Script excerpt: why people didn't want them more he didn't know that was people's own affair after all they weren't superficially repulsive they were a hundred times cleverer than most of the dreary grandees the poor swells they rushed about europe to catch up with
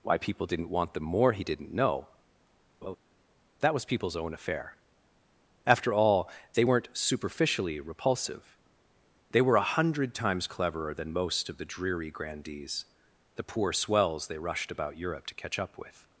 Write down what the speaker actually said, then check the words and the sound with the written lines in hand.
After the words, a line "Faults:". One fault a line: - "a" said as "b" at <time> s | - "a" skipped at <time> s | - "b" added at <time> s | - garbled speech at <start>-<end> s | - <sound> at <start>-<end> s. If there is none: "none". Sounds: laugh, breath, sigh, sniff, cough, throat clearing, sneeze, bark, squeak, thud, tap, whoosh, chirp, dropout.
why people didn't want them more he didn't know that was people's own affair after all they weren't superficially repulsive they were a hundred times cleverer than most of the dreary grandees the poor swells they rushed about europe to catch up with
Faults:
- laugh at 2.8-3.0 s